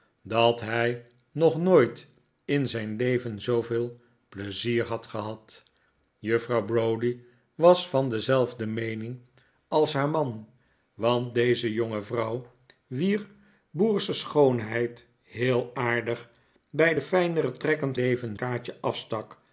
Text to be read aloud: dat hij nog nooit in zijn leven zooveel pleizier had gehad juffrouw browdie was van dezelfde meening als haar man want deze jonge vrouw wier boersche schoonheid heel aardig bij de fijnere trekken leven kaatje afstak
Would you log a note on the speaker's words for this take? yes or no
no